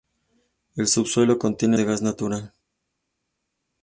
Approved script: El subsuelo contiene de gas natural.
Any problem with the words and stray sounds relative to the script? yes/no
no